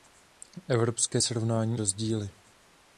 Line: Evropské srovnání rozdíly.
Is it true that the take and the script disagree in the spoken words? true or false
false